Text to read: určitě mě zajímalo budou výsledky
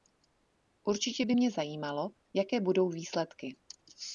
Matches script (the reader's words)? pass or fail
fail